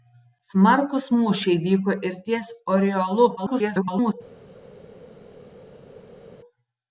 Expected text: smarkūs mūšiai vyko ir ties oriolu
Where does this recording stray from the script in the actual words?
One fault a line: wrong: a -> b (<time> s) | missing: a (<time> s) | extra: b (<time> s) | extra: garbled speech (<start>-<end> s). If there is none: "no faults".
extra: garbled speech (3.4-4.1 s)